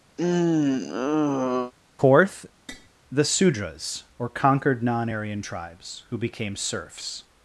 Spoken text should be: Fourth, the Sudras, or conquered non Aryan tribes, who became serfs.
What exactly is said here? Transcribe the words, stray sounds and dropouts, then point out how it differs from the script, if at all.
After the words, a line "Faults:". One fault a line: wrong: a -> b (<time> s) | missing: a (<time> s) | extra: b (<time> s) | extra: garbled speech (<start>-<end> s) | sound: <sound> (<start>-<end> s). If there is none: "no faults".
Fourth, the Sudras, or conquered non Aryan tribes, who became serfs.
Faults:
sound: sigh (0.2-1.7 s)
sound: tap (2.7-2.9 s)